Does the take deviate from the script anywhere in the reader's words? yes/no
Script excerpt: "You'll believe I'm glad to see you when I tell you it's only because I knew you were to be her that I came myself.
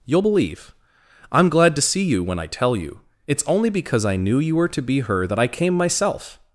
no